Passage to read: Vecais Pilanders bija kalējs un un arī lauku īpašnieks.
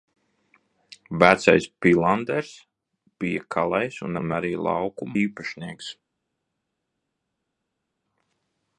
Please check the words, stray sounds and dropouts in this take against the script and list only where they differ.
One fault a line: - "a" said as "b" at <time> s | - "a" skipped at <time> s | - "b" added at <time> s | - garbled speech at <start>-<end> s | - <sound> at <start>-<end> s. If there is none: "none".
none